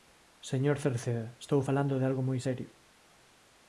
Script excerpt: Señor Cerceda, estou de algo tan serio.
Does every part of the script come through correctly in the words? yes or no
no